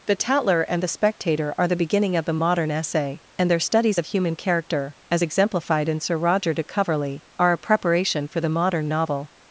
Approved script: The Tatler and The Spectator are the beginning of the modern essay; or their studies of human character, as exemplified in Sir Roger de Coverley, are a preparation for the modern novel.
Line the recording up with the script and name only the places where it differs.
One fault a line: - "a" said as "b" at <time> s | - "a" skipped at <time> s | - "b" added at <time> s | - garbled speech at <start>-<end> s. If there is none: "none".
- "or" said as "and" at 3.4 s